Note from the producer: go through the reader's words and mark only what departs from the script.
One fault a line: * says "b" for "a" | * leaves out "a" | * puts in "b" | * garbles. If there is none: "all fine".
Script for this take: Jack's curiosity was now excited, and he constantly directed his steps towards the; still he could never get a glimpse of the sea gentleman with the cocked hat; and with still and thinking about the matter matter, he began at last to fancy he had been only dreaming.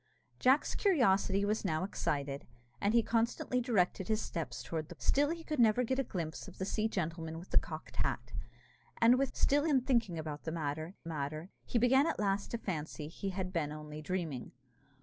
all fine